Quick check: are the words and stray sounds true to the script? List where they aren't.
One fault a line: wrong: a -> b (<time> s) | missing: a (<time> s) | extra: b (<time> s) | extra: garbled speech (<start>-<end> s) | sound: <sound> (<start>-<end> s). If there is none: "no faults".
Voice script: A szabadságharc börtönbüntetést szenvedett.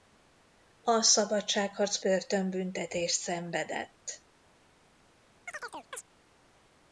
sound: chirp (5.5-6.0 s)